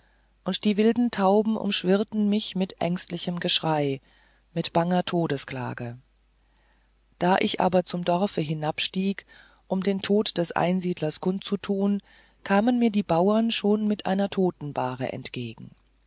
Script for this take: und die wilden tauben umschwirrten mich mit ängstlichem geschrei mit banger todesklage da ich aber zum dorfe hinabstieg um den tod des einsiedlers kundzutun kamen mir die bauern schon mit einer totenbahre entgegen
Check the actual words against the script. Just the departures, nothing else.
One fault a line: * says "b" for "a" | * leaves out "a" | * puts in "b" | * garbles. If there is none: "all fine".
all fine